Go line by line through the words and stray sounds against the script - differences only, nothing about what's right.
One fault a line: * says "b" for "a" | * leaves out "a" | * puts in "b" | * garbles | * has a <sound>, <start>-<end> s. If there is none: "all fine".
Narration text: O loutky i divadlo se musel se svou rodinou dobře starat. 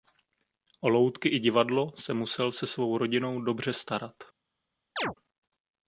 * has a chirp, 5.0-5.1 s